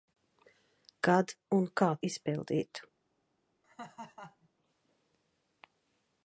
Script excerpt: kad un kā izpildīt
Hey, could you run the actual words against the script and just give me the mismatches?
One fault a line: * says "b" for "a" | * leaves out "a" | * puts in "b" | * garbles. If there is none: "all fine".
all fine